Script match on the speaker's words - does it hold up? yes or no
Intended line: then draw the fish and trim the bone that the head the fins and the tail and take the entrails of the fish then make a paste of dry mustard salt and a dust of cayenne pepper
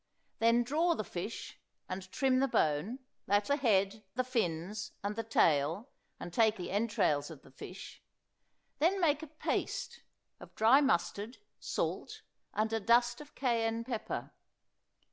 yes